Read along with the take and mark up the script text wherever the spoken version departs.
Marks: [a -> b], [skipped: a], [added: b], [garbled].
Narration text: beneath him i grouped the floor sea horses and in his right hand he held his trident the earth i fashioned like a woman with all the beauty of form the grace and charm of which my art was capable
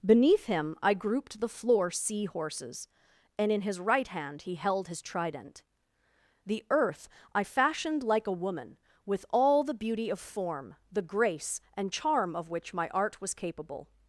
beneath him i grouped the floor sea horses and in his right hand he held his trident the earth i fashioned like a woman with all the beauty of form the grace and charm of which my art was capable